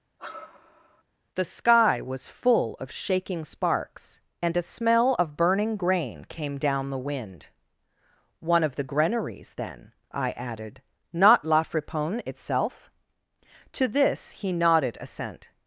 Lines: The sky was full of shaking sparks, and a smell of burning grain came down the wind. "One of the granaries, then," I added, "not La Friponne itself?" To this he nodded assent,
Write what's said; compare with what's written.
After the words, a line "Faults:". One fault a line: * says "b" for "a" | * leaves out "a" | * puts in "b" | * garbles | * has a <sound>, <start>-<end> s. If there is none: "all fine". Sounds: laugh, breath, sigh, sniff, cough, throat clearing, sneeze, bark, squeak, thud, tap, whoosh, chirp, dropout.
The sky was full of shaking sparks, and a smell of burning grain came down the wind. "One of the granaries, then," I added, "not La Friponne itself?" To this he nodded assent,
Faults:
* has a sigh, 0.2-1.0 s